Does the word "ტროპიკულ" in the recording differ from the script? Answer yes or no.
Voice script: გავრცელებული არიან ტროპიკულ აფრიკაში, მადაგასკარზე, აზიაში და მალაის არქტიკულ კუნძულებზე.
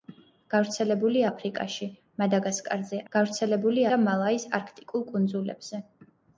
yes